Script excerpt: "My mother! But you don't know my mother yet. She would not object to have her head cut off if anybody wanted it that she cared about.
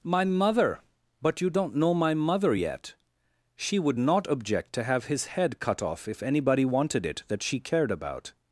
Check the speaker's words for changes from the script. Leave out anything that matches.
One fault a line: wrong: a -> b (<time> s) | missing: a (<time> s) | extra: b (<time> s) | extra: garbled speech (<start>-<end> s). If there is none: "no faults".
wrong: her -> his (5.1 s)